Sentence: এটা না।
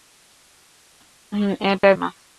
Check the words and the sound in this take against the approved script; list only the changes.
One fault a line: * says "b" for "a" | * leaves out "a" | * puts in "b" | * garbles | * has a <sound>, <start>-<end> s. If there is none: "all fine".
* has a dropout, 1.8-1.8 s